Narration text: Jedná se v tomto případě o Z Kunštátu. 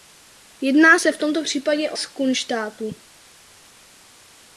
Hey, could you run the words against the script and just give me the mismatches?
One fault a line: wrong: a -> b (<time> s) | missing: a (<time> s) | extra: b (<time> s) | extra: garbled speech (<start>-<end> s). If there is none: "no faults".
no faults